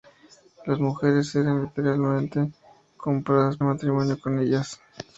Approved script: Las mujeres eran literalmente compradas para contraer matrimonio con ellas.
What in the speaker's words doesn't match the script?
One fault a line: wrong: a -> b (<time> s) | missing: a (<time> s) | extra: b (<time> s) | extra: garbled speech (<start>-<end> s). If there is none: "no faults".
missing: para contraer (3.6 s)